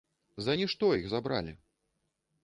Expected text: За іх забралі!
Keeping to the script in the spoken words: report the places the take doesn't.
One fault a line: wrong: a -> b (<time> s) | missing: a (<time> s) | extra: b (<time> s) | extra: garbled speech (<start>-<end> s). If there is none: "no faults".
extra: нішто (0.6 s)